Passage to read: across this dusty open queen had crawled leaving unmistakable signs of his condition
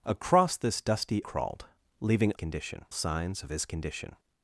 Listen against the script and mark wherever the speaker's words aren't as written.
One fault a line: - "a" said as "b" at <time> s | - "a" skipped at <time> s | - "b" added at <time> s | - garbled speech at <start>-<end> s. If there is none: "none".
- "open queen had" skipped at 1.2 s
- "unmistakable" said as "condition" at 2.3 s